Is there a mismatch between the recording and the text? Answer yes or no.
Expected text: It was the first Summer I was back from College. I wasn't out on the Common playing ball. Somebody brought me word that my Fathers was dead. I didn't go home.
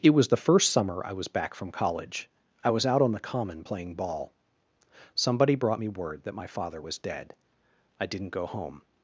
yes